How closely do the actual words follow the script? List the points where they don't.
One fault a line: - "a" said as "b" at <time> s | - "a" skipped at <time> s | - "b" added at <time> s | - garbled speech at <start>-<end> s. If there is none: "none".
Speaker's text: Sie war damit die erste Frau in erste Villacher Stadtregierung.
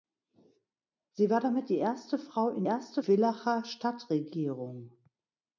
none